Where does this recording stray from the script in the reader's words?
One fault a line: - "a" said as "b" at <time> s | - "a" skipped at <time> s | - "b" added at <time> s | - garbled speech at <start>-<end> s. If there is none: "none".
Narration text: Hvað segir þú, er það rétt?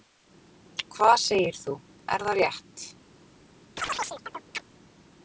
none